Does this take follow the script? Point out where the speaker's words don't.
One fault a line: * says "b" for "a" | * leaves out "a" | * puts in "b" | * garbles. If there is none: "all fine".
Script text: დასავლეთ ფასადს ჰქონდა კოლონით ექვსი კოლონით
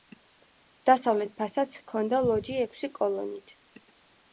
* says "ლოჯი" for "კოლონით"